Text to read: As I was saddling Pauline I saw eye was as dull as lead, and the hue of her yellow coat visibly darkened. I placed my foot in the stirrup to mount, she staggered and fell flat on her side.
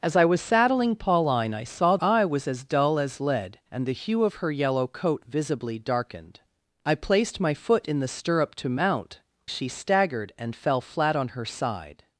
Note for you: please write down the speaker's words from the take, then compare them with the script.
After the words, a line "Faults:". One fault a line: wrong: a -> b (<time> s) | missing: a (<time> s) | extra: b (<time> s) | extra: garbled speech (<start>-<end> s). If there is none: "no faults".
As I was saddling Pauline I saw eye was as dull as lead, and the hue of her yellow coat visibly darkened. I placed my foot in the stirrup to mount, she staggered and fell flat on her side.
Faults:
no faults